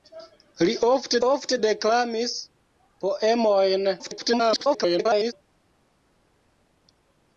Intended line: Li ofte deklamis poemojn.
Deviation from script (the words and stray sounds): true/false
true